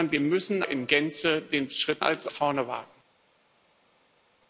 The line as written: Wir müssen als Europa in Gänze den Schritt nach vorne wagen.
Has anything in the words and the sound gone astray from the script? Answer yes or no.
yes